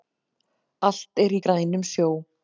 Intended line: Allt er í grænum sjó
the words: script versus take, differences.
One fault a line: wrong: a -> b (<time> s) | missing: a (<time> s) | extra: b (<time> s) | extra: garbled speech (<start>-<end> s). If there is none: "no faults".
no faults